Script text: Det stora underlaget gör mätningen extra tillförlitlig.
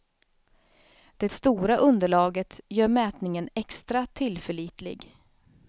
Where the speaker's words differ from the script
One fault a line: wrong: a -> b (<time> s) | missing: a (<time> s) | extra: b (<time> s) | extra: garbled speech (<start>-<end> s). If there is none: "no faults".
no faults